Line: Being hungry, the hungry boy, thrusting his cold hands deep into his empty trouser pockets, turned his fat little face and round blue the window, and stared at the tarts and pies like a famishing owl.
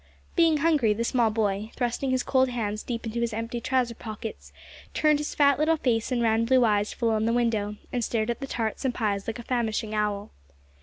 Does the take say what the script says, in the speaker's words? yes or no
no